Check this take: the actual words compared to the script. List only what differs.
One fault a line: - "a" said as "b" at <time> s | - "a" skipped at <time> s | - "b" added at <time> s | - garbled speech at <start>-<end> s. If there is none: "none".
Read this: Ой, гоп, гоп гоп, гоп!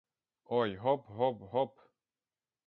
- "гоп" skipped at 1.8 s